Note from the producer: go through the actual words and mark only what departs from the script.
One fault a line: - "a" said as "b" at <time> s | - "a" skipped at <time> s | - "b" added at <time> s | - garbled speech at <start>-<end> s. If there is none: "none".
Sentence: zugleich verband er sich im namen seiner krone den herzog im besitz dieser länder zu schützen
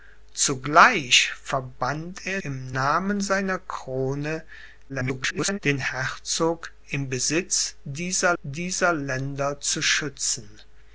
- "sich" skipped at 2.4 s
- garbled speech at 4.9-5.6 s
- "dieser" added at 8.4 s